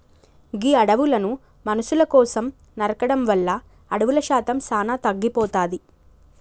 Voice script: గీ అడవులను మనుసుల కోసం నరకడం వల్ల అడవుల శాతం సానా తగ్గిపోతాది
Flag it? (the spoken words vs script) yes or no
no